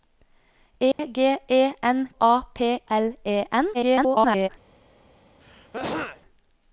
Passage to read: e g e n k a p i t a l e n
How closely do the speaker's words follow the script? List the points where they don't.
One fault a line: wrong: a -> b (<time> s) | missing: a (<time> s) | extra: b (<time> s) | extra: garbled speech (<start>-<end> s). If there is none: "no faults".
missing: k (2.1 s)
missing: i t a (2.8 s)
extra: garbled speech (3.7-4.5 s)